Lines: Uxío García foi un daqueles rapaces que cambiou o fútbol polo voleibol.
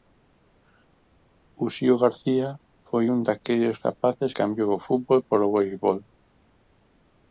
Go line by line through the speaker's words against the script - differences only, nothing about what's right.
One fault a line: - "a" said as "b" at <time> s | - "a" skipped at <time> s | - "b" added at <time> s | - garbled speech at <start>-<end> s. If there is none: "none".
- "que" skipped at 4.3 s